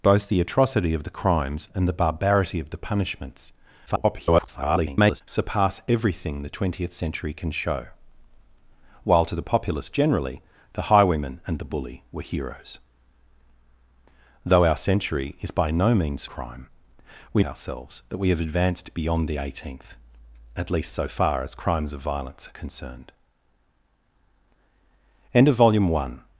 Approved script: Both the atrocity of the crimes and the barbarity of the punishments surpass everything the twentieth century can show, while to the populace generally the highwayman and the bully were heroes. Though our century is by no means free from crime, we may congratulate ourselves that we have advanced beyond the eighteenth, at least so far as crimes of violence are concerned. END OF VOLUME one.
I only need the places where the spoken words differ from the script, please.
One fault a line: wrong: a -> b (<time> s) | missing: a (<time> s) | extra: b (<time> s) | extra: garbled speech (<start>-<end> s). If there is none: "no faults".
extra: garbled speech (3.9-5.2 s)
missing: free from (16.2 s)
missing: may congratulate (17.4 s)